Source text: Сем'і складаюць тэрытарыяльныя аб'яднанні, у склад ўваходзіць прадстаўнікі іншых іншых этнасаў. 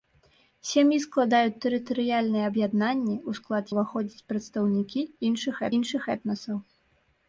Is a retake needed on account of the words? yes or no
no